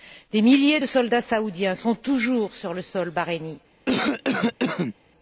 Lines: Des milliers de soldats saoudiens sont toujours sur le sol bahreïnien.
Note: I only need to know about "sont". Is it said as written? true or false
true